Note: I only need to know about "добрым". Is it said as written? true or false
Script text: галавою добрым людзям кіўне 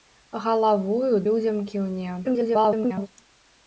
false